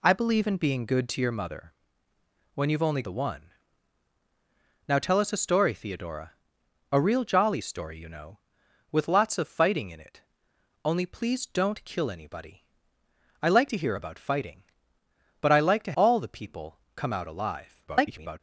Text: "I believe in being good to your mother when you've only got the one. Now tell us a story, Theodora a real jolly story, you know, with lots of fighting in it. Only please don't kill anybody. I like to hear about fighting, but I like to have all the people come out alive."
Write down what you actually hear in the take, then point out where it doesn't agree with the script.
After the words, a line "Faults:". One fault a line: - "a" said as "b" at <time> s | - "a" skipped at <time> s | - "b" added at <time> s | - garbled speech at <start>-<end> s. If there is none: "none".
"I believe in being good to your mother when you've only the one. Now tell us a story, Theodora a real jolly story, you know, with lots of fighting in it. Only please don't kill anybody. I like to hear about fighting, but I like to all the people come out alive." [garbled]
Faults:
- "got" skipped at 3.0 s
- "have" skipped at 15.9 s
- garbled speech at 17.9-18.4 s